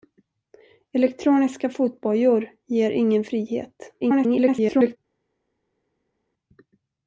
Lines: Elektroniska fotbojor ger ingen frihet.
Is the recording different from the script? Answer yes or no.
yes